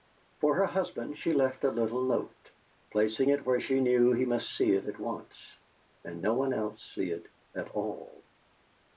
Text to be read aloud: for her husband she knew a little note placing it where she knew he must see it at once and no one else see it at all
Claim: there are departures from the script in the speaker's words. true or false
true